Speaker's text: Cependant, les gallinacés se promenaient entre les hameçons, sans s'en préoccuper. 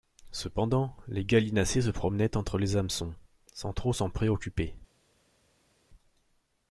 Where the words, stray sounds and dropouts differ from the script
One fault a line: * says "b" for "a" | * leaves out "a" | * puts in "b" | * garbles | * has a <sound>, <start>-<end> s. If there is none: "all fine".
* puts in "trop"